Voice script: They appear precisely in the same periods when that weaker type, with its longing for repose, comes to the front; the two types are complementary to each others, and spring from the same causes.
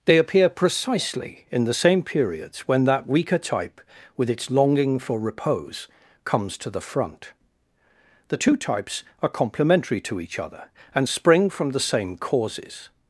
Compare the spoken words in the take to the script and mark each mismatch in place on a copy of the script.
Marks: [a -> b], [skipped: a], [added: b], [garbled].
They appear precisely in the same periods when that weaker type, with its longing for repose, comes to the front; the two types are complementary to each [others, -> other] and spring from the same causes.